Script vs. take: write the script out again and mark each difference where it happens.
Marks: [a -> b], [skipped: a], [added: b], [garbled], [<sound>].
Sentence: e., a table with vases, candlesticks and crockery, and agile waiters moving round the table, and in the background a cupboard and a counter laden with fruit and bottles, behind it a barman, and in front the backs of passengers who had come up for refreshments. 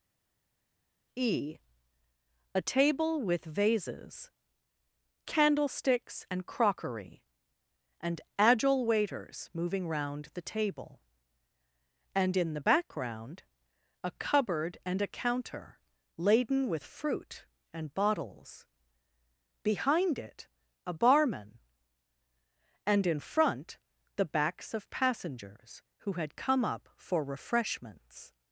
e., a table with vases, candlesticks and crockery, and agile waiters moving round the table, and in the background a cupboard and a counter laden with fruit and bottles, behind it a barman, and in front the backs of passengers who had come up for refreshments.